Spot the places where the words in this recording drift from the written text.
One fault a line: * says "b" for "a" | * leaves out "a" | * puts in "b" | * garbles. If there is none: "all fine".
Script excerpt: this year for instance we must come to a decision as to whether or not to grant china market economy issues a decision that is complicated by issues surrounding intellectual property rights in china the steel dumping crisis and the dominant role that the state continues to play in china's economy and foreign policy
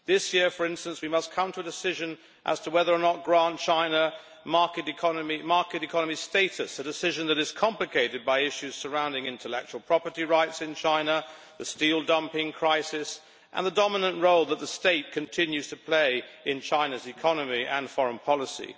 * says "status" for "issues"